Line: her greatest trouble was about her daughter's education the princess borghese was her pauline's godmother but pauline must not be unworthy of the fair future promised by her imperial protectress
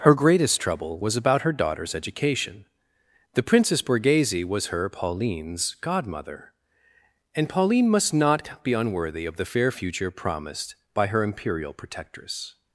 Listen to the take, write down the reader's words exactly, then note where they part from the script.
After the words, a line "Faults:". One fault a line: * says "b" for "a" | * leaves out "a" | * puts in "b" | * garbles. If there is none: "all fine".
her greatest trouble was about her daughter's education the princess borghese was her pauline's godmother and pauline must not be unworthy of the fair future promised by her imperial protectress
Faults:
* says "and" for "but"